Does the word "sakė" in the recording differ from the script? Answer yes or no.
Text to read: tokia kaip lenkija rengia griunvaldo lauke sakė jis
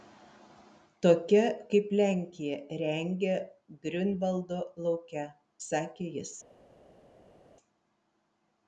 no